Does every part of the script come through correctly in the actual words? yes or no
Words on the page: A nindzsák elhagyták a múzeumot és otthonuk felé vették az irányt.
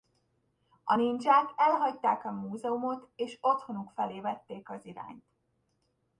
yes